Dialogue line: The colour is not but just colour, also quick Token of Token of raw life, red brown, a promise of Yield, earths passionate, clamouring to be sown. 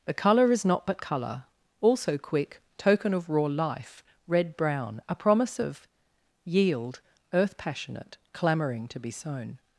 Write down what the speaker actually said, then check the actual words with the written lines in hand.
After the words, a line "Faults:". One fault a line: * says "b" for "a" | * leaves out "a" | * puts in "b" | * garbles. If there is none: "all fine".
The colour is not but colour, also quick Token of raw life, red brown, a promise of Yield, earth passionate, clamouring to be sown.
Faults:
* leaves out "just"
* leaves out "Token of"
* says "earth" for "earths"